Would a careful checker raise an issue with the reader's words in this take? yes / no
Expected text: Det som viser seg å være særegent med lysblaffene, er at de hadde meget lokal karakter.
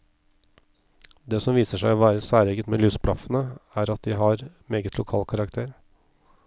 yes